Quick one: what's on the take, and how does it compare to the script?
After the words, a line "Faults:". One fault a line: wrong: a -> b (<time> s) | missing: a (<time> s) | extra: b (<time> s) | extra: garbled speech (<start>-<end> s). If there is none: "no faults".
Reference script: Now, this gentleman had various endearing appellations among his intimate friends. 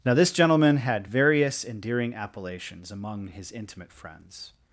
Now, this gentleman had various endearing appellations among his intimate friends.
Faults:
no faults